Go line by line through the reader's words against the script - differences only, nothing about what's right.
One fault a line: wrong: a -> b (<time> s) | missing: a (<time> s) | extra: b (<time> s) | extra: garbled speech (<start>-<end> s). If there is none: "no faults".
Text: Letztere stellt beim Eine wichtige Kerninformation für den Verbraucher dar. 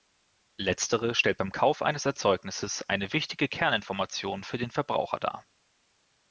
extra: Kauf eines Erzeugnisses (1.5 s)